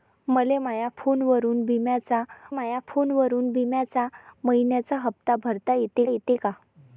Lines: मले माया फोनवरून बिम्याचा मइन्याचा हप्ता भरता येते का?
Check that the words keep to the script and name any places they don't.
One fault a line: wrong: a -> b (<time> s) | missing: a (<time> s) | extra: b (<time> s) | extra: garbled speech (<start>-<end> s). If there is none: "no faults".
extra: माया फोनवरून बिम्याचा (2.5 s)
extra: येते (6.1 s)